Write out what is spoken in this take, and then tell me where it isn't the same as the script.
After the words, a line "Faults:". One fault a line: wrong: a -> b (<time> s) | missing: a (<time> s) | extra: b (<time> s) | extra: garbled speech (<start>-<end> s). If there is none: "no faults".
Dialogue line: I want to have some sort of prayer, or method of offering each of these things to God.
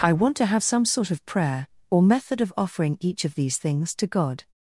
I want to have some sort of prayer, or method of offering each of these things to God.
Faults:
no faults